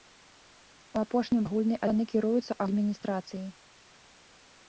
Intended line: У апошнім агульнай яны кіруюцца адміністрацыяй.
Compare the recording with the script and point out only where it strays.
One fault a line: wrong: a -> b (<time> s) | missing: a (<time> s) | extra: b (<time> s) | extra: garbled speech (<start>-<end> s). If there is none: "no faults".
no faults